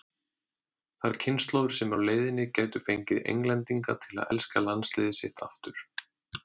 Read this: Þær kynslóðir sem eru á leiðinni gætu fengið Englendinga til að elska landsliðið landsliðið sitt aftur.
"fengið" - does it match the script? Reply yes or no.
yes